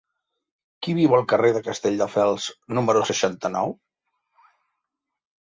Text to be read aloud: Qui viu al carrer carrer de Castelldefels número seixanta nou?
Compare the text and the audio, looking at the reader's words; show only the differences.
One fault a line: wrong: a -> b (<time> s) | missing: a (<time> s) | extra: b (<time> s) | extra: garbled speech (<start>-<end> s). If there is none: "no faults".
missing: carrer (1.5 s)